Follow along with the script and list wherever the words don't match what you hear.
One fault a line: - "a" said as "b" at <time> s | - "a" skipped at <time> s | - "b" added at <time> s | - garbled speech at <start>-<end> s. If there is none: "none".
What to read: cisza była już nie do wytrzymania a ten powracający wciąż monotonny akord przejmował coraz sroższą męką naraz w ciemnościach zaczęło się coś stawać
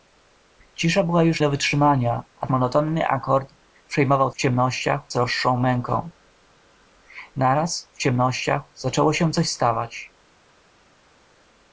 - "nie" skipped at 1.4 s
- "ten powracający wciąż" skipped at 2.5 s
- "coraz" said as "ciemnościach" at 4.4 s